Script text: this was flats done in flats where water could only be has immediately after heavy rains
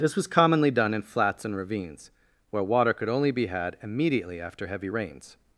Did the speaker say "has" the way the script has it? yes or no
no